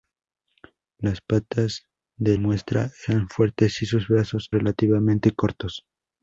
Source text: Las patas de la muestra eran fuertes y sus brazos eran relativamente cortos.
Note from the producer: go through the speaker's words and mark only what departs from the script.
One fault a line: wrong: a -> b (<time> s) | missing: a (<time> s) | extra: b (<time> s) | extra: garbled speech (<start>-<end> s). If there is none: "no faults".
missing: la (2.4 s)
missing: eran (4.5 s)